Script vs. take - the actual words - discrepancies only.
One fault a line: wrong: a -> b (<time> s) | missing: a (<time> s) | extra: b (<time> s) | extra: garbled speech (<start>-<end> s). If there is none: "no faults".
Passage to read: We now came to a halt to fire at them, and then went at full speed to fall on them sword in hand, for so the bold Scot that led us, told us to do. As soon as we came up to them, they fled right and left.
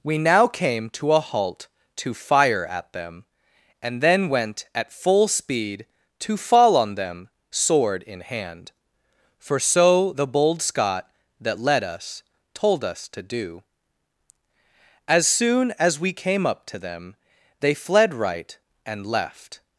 no faults